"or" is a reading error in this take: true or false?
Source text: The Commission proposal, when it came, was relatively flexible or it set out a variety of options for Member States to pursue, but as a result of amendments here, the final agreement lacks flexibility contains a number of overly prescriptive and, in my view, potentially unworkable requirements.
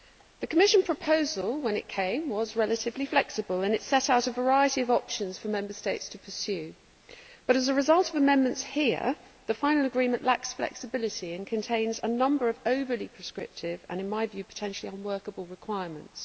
true